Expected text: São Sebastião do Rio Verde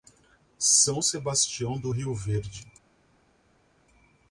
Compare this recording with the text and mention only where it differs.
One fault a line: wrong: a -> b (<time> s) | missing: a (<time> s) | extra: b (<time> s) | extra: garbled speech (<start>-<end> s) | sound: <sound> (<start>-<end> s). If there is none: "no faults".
no faults